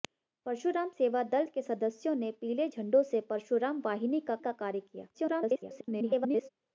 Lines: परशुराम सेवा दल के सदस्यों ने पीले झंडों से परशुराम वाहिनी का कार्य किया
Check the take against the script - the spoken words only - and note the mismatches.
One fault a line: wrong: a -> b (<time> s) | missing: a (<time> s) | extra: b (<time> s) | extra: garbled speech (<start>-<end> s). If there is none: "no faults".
extra: का (4.4 s)
extra: garbled speech (5.1-6.5 s)